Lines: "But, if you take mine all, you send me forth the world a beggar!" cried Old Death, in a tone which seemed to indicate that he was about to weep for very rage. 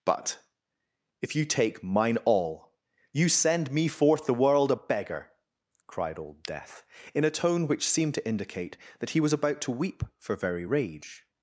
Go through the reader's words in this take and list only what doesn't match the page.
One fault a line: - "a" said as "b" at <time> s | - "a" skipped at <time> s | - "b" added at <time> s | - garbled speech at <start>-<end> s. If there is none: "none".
none